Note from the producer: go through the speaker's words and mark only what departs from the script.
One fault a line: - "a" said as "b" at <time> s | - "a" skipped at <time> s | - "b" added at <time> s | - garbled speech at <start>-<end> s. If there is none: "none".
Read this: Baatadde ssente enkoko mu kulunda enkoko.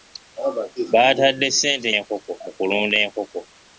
none